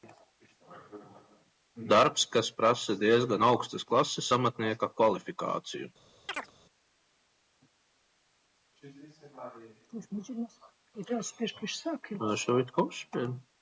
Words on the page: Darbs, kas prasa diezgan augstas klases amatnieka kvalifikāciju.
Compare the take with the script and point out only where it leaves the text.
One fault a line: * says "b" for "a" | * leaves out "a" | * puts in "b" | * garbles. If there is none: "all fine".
all fine